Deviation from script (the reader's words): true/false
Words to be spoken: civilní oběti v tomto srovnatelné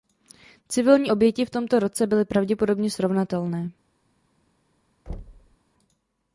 true